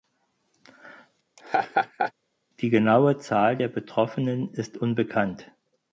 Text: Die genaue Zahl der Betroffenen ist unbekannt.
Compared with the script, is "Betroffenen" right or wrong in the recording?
right